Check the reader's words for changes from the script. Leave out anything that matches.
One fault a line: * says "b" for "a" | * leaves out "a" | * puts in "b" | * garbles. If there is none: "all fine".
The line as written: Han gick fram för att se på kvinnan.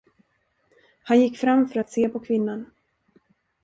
all fine